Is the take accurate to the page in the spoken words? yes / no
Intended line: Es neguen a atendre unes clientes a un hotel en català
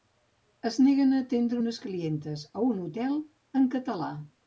yes